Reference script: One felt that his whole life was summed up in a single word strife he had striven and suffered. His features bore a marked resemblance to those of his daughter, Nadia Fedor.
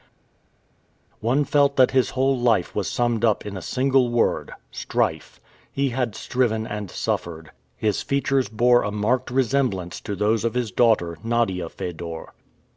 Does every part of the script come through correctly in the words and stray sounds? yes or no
yes